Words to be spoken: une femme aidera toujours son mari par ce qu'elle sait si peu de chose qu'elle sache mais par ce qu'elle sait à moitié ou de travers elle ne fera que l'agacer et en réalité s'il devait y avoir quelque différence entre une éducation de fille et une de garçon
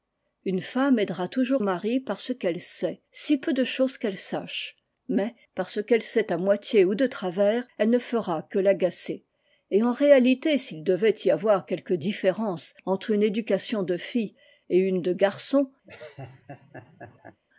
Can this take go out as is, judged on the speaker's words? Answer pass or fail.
fail